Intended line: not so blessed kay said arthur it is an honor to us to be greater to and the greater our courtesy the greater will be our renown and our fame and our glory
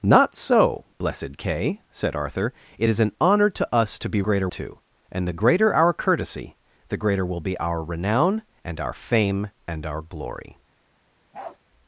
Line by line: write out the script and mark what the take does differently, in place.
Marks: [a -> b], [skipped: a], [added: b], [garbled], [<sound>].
not so blessed kay said arthur it is an honor to us to be greater to and the greater our courtesy the greater will be our renown and our fame and our glory [bark]